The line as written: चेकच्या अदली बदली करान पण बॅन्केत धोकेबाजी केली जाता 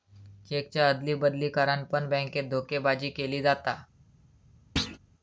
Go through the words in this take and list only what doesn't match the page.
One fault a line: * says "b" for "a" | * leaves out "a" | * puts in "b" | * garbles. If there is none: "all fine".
all fine